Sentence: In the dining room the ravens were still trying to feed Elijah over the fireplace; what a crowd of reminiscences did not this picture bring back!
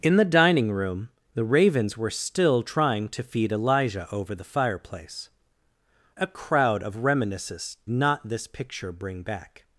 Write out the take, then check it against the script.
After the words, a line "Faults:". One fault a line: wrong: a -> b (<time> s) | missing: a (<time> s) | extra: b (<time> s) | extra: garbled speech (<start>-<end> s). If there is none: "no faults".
In the dining room the ravens were still trying to feed Elijah over the fireplace; a crowd of reminiscences not this picture bring back!
Faults:
missing: what (5.3 s)
missing: did (7.8 s)